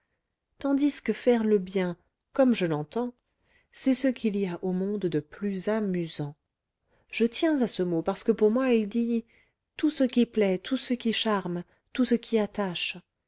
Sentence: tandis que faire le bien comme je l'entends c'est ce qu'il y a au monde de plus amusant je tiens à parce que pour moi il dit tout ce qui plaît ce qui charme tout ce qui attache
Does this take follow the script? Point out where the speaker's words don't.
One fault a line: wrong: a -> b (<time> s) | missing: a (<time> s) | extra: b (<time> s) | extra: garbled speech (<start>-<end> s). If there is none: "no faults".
extra: ce mot (7.7 s)
extra: tout (10.6 s)